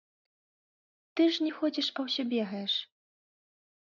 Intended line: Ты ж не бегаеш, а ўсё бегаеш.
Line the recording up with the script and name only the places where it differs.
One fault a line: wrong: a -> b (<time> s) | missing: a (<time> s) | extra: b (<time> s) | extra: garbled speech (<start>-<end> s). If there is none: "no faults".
wrong: бегаеш -> ходзіш (1.6 s)